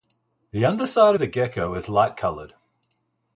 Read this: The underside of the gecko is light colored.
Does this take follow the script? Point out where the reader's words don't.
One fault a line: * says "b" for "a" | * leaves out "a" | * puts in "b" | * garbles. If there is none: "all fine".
* leaves out "of"